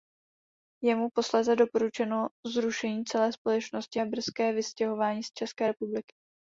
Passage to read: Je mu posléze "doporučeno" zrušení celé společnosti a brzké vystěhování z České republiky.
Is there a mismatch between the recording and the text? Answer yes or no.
no